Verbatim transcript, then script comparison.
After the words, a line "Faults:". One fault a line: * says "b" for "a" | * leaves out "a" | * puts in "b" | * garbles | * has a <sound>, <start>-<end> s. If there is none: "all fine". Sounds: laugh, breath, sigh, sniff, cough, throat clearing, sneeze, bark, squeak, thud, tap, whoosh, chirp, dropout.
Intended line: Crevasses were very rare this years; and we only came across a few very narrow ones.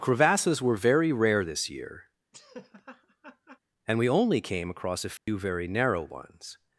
Crevasses were very rare this year; and we only came across a few very narrow ones.
Faults:
* says "year" for "years"
* has a laugh, 2.3-3.6 s
* has a dropout, 5.2-5.3 s